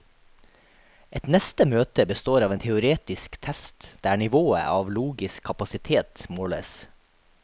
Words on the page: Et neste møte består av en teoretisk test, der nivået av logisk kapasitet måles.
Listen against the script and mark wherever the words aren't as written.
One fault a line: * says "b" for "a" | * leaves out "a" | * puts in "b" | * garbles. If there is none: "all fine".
all fine